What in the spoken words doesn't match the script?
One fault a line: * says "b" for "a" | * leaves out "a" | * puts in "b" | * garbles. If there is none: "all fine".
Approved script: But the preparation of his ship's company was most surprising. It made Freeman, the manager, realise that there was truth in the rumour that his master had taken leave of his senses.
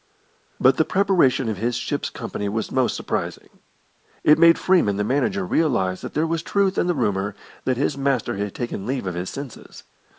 all fine